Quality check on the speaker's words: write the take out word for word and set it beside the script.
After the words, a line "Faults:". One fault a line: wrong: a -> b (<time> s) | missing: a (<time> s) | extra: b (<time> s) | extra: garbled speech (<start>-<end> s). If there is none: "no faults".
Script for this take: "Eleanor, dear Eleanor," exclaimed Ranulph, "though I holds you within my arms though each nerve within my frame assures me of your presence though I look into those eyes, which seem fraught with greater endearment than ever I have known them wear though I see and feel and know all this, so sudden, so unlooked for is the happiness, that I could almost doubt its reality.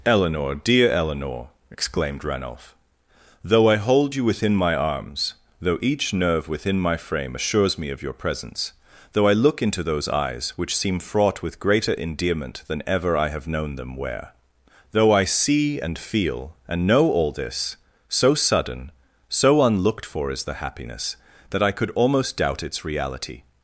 "Eleanor, dear Eleanor," exclaimed Ranulph, "though I hold you within my arms though each nerve within my frame assures me of your presence though I look into those eyes, which seem fraught with greater endearment than ever I have known them wear though I see and feel and know all this, so sudden, so unlooked for is the happiness, that I could almost doubt its reality.
Faults:
wrong: holds -> hold (3.8 s)